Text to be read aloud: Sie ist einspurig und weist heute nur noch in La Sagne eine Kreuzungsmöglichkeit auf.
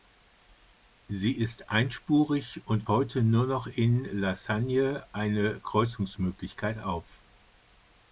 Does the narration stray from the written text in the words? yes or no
yes